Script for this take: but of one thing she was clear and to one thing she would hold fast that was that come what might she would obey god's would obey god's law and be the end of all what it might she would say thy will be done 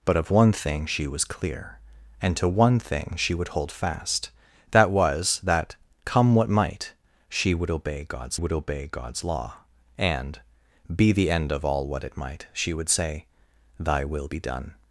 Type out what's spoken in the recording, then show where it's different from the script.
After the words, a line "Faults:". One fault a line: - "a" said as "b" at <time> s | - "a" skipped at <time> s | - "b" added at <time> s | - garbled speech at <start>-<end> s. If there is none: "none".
but of one thing she was clear and to one thing she would hold fast that was that come what might she would obey god's would obey god's law and be the end of all what it might she would say thy will be done
Faults:
none